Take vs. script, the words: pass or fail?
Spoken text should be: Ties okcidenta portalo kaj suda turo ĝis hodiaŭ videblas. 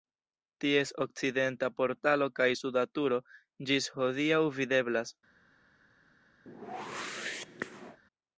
pass